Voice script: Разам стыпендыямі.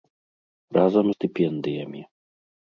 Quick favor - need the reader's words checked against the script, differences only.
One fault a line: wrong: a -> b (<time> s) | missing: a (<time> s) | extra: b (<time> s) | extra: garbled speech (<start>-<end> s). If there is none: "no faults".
no faults